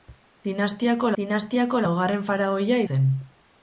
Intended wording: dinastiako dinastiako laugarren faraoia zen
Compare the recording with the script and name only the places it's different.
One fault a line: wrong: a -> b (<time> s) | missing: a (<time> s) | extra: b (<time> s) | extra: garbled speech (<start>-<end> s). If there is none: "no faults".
no faults